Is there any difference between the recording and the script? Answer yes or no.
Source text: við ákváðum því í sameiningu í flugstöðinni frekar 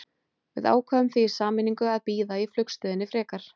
yes